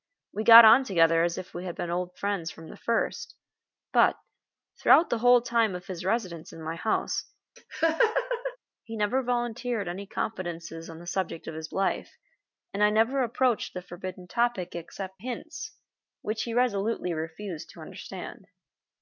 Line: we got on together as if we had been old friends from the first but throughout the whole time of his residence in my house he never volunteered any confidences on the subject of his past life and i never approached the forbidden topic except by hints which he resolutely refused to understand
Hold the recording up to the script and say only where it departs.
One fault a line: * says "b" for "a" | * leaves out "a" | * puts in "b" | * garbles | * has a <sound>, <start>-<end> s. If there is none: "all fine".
* has a laugh, 7.6-8.6 s
* leaves out "past"
* leaves out "by"